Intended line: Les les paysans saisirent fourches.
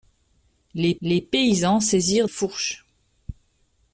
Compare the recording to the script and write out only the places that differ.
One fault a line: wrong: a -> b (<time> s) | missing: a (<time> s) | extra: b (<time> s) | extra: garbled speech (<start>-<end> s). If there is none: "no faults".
no faults